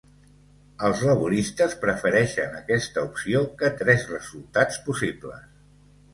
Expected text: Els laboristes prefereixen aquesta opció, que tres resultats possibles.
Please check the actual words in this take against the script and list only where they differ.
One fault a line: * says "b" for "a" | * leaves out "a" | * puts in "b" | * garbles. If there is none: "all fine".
all fine